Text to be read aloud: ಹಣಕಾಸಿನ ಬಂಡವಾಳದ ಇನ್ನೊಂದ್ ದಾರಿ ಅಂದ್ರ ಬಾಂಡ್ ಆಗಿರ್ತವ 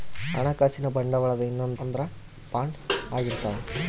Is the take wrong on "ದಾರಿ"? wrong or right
wrong